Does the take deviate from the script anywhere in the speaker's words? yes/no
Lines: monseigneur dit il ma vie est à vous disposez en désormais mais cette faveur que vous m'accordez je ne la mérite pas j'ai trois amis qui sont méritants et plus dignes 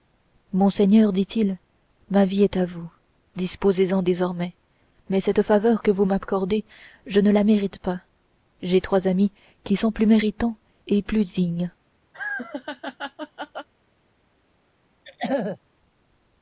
yes